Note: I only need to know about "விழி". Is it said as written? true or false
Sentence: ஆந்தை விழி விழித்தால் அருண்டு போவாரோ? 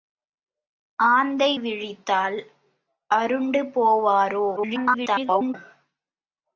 false